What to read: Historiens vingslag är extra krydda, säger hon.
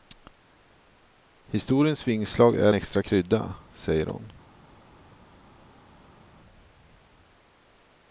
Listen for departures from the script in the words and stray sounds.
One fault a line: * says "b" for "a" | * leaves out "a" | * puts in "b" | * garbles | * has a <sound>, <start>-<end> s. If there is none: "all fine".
all fine